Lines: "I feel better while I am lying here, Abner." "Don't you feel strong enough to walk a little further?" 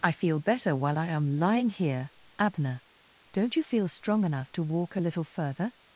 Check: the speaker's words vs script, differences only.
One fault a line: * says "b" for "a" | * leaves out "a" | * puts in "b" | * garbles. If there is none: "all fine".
all fine